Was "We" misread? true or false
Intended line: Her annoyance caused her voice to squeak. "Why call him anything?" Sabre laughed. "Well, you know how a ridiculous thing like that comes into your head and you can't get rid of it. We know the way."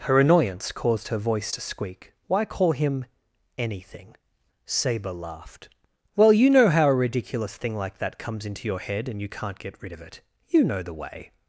true